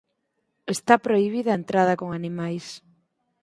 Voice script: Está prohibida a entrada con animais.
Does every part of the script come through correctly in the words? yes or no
yes